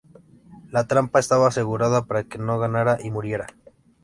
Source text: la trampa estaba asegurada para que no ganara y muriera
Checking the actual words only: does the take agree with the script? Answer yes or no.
yes